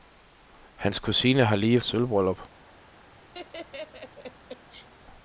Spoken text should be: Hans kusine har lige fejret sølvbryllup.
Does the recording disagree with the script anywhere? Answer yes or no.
yes